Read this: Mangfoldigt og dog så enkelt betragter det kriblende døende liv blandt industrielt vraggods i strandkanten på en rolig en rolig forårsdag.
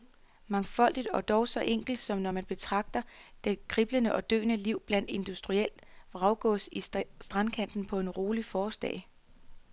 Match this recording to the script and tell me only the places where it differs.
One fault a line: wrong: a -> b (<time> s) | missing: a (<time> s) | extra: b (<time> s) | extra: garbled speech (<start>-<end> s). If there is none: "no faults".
extra: som når man (2.0 s)
extra: og (4.2 s)
missing: en rolig (8.4 s)